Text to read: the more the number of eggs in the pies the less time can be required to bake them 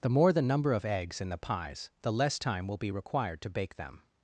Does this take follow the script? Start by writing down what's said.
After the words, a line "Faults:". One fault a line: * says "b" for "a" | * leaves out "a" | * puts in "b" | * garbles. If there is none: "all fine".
the more the number of eggs in the pies the less time will be required to bake them
Faults:
* says "will" for "can"